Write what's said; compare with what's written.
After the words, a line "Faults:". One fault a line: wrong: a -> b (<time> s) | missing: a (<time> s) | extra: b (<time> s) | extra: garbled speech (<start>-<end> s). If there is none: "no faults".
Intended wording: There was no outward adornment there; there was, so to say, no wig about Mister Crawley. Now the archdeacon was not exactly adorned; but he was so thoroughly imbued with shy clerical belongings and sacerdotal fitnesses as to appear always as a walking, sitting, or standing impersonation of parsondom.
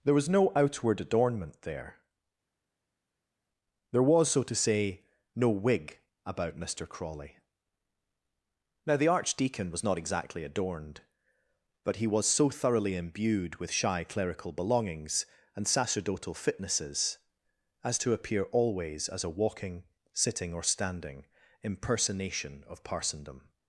There was no outward adornment there; there was, so to say, no wig about Mister Crawley. Now the archdeacon was not exactly adorned; but he was so thoroughly imbued with shy clerical belongings and sacerdotal fitnesses as to appear always as a walking, sitting, or standing impersonation of parsondom.
Faults:
no faults